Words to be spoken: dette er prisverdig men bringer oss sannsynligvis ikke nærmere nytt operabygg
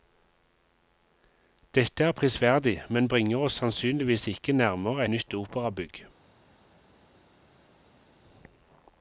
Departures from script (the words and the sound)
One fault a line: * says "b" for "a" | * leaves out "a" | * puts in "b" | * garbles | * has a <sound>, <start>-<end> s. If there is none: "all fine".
all fine